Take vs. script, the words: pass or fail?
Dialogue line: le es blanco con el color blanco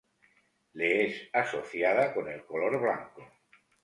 fail